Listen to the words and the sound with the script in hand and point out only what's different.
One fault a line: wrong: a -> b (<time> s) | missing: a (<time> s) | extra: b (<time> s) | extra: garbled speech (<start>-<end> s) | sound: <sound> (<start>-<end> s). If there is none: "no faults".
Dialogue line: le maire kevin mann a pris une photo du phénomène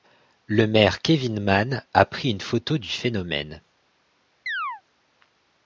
sound: chirp (4.5-4.8 s)